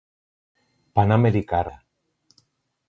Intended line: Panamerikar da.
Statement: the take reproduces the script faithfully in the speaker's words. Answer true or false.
true